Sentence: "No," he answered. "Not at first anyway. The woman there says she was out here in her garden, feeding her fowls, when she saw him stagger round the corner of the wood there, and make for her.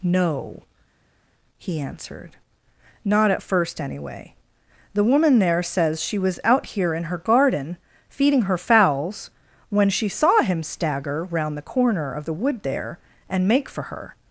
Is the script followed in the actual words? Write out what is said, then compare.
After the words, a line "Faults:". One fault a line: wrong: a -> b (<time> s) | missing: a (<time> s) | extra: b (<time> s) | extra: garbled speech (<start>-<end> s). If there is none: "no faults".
"No," he answered. "Not at first anyway. The woman there says she was out here in her garden, feeding her fowls, when she saw him stagger round the corner of the wood there, and make for her.
Faults:
no faults